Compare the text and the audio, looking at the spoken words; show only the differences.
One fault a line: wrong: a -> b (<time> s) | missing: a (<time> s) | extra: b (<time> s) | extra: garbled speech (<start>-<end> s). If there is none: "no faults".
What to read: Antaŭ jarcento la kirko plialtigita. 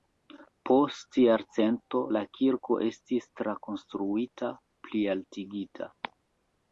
wrong: Antaŭ -> Post (0.7 s)
extra: estis trakonstruita (2.9 s)